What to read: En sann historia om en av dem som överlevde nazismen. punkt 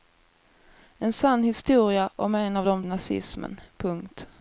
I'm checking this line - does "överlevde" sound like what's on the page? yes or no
no